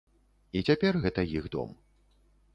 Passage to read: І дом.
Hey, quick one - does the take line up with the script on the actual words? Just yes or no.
no